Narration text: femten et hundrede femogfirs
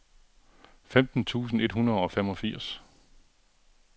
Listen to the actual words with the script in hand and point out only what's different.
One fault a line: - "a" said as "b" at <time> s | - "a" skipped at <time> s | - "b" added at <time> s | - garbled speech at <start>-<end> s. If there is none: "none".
- "tusind" added at 1.2 s
- "og" added at 2.0 s